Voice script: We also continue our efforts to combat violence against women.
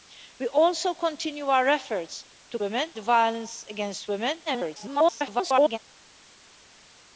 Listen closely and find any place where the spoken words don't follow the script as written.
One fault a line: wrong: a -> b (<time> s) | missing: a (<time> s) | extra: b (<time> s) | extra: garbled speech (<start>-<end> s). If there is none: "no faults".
wrong: combat -> women (2.6 s)
extra: garbled speech (4.5-5.8 s)